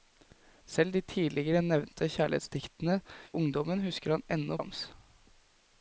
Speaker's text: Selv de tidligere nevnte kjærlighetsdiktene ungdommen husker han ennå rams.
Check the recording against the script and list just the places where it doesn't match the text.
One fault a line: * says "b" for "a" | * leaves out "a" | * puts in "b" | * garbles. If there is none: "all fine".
all fine